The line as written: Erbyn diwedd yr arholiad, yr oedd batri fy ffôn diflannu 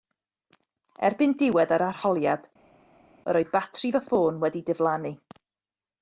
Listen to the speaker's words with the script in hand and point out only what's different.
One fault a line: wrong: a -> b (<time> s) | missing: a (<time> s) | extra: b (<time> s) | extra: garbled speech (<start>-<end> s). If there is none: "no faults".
extra: wedi (4.5 s)